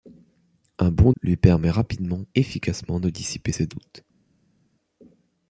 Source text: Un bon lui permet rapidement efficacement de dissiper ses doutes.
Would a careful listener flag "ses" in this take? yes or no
no